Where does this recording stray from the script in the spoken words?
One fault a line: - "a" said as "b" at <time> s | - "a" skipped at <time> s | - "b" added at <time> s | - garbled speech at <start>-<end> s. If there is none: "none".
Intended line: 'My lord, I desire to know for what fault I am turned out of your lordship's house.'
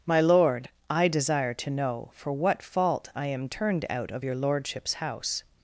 none